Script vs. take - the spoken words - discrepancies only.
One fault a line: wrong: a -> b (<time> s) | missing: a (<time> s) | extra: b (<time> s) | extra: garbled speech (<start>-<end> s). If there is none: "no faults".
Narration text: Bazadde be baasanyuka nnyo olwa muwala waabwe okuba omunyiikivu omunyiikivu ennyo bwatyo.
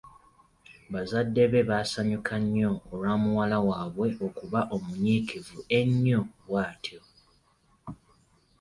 missing: omunyiikivu (5.6 s)